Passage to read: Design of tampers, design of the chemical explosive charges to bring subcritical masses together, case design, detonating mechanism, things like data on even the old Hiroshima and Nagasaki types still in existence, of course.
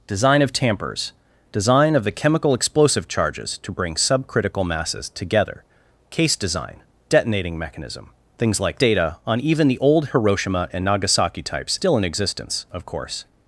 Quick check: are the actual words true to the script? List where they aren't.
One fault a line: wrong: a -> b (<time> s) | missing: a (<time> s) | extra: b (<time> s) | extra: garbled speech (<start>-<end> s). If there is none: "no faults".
no faults